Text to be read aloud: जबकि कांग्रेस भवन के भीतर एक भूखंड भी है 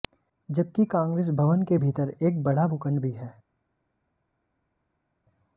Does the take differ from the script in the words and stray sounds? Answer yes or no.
yes